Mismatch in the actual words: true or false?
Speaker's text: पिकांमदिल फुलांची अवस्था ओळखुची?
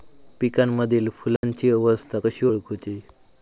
true